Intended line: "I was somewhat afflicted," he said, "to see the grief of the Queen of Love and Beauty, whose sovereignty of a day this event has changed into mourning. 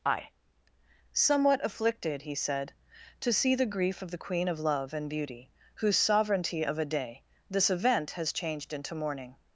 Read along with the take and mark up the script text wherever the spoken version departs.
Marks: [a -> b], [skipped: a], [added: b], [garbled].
"I [skipped: was] somewhat afflicted," he said, "to see the grief of the Queen of Love and Beauty, whose sovereignty of a day this event has changed into mourning.